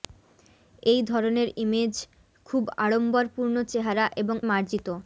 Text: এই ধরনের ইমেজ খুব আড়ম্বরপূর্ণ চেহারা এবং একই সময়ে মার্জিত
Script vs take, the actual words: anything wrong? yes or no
yes